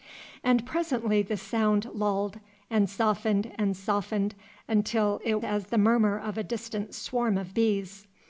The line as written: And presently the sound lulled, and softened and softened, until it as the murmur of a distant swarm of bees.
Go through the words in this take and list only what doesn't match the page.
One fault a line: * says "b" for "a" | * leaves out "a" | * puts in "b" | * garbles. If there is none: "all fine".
all fine